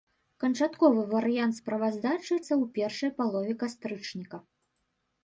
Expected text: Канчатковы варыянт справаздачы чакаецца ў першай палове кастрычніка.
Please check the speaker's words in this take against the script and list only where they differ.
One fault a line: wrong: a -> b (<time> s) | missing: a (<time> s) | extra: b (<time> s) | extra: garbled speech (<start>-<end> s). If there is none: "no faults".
missing: чакаецца (2.3 s)